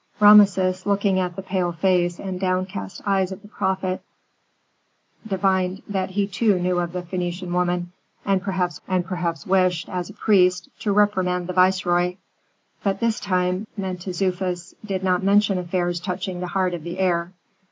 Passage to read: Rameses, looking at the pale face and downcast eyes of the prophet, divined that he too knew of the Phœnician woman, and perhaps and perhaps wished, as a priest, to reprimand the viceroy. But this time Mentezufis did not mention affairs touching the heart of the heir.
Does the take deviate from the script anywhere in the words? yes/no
no